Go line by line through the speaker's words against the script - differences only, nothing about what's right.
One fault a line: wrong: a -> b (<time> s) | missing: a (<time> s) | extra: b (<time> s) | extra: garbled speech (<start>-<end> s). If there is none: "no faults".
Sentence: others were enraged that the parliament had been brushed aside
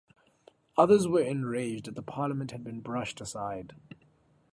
no faults